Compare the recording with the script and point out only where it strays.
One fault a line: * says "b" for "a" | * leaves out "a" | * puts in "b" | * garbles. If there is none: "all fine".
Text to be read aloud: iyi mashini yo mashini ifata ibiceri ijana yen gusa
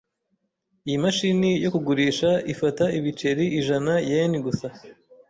* says "kugurisha" for "mashini"